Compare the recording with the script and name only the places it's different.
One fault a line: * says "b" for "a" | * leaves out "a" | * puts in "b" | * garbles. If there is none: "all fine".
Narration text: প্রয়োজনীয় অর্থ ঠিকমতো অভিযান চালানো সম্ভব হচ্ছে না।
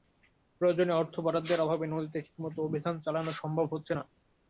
* puts in "বরাদ্দের অভাবে নদীতে"